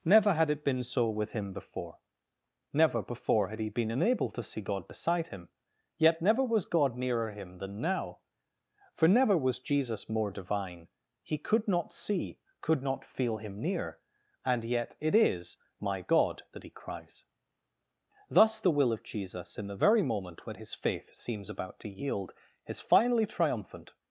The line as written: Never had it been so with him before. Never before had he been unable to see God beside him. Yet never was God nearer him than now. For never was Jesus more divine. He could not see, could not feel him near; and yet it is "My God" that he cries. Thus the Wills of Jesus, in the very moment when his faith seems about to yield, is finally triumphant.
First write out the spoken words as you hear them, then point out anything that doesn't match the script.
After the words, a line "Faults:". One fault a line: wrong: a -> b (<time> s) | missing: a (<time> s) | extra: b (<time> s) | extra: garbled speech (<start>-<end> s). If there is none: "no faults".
Never had it been so with him before. Never before had he been unable to see God beside him. Yet never was God nearer him than now. For never was Jesus more divine. He could not see, could not feel him near; and yet it is "My God" that he cries. Thus the Will of Jesus, in the very moment when his faith seems about to yield, is finally triumphant.
Faults:
wrong: Wills -> Will (18.7 s)